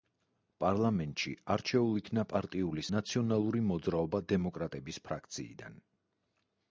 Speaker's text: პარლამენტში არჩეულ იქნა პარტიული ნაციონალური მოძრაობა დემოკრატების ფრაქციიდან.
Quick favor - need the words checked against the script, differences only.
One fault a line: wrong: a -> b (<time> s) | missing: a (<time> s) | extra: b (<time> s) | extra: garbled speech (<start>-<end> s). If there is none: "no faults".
no faults